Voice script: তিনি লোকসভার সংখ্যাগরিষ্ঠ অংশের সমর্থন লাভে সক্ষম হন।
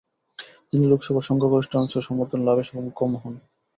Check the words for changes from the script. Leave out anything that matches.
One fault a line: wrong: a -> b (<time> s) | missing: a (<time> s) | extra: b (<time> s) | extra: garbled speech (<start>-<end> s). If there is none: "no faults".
no faults